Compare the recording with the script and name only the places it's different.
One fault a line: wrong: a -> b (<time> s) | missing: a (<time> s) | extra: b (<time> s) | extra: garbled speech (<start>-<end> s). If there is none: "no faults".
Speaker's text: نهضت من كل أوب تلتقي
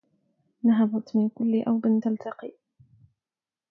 no faults